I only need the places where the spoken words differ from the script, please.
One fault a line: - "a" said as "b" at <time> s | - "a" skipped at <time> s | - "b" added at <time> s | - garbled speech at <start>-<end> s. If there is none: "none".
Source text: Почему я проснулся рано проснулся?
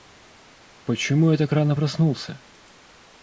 - "проснулся" said as "так" at 1.4 s